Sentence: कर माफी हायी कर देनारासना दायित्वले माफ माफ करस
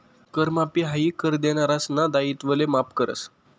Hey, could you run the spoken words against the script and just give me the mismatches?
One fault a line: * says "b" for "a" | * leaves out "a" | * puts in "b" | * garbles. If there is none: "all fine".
* leaves out "माफ"